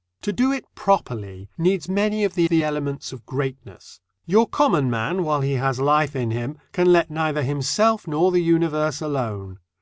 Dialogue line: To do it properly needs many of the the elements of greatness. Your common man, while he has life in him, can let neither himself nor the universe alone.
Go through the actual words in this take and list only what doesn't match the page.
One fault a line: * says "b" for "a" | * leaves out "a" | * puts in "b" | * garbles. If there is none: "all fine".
all fine